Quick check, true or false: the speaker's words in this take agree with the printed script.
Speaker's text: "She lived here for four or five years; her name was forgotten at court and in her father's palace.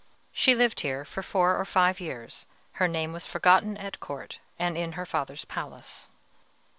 true